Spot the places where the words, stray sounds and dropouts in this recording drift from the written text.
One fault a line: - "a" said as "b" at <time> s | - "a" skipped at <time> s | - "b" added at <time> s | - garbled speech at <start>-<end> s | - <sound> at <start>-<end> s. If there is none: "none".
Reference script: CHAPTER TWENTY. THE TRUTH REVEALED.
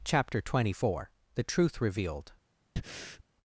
- "FOUR" added at 0.7 s
- breath at 2.8-3.2 s